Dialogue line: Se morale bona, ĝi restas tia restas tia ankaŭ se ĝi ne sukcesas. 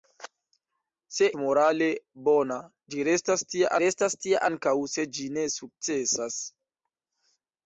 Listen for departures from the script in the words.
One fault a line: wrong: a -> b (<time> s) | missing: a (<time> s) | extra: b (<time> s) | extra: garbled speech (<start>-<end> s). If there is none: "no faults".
no faults